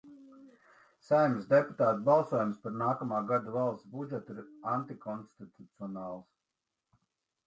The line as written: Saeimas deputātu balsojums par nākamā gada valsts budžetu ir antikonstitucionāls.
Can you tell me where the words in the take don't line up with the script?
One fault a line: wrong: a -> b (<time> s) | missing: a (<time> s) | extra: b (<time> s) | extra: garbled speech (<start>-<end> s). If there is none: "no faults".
no faults